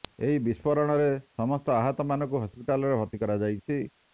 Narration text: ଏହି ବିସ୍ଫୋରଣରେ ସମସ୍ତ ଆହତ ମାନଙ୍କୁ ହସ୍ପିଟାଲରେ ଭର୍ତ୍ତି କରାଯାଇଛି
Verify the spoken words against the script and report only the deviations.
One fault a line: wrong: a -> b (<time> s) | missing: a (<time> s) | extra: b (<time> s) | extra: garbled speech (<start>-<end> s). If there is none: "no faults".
no faults